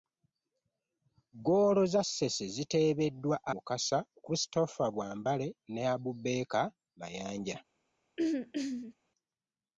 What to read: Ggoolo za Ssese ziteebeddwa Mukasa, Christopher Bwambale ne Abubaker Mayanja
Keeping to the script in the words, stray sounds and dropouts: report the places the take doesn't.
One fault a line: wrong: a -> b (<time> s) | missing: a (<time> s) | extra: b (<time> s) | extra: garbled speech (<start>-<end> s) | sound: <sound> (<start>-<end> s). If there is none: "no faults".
sound: throat clearing (8.2-8.9 s)